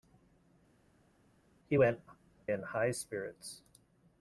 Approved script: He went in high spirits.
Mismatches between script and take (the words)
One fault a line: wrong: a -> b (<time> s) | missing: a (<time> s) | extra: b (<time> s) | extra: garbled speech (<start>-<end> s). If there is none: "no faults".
no faults